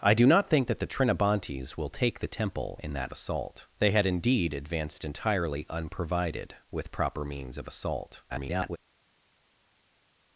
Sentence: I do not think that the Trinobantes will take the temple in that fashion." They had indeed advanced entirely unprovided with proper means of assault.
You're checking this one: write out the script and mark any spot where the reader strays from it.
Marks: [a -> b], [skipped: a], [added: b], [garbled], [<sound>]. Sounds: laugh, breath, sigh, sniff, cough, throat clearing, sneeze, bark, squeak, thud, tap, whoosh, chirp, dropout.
I do not think that the Trinobantes will take the temple in that [fashion." -> assault] They had indeed advanced entirely unprovided with proper means of assault. [garbled]